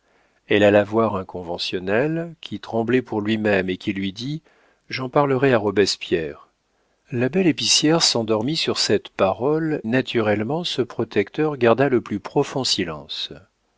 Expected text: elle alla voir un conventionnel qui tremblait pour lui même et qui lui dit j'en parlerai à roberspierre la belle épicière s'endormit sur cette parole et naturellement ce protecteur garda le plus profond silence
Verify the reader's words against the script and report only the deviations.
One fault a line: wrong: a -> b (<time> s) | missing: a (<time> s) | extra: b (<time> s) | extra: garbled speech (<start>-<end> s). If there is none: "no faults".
missing: et (9.8 s)